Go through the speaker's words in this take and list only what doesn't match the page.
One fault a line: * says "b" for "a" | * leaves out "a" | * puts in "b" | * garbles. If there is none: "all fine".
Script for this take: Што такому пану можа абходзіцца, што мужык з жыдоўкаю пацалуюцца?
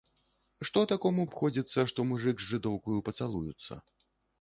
* leaves out "пану можа"